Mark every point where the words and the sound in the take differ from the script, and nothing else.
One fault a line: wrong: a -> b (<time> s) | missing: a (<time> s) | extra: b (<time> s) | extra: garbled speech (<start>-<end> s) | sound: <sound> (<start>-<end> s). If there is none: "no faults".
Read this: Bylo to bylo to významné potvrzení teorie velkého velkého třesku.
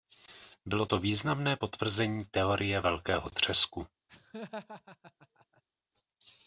missing: bylo to (1.0 s)
missing: velkého (3.3 s)
sound: laugh (4.1-5.6 s)